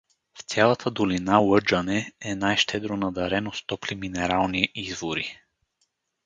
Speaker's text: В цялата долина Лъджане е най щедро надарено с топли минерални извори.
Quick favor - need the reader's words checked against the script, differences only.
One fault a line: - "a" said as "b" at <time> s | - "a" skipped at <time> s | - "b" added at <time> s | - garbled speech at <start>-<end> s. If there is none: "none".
none